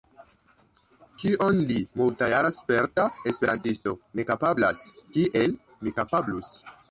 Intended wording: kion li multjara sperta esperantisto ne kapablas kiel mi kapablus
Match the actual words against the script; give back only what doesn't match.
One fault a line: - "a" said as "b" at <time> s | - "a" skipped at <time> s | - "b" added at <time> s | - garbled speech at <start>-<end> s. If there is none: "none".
none